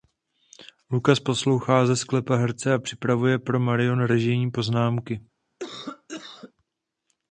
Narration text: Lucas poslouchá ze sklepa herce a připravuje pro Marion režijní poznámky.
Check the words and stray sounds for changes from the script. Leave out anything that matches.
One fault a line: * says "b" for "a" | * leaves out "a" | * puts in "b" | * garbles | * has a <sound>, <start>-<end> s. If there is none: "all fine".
* has a cough, 5.6-6.5 s